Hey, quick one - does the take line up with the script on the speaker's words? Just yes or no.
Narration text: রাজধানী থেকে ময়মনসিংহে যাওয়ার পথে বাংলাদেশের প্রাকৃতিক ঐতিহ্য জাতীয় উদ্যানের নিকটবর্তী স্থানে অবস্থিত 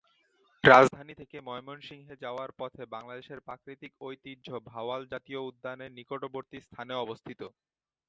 no